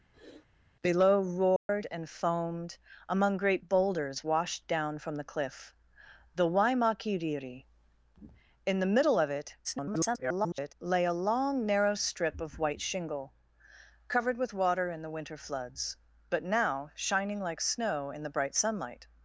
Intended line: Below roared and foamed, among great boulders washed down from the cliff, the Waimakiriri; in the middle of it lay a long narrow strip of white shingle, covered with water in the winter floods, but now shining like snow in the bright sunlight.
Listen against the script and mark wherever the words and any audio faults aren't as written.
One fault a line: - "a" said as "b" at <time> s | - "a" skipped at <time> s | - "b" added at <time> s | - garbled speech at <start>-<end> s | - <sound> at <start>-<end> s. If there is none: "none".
- sniff at 0.1-0.5 s
- dropout at 1.6-1.7 s
- garbled speech at 9.6-10.7 s